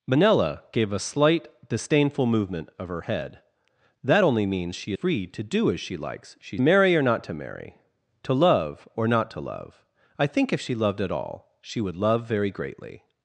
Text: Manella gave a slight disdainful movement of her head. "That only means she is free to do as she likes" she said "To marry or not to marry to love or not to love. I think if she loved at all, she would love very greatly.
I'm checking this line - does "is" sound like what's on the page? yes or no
no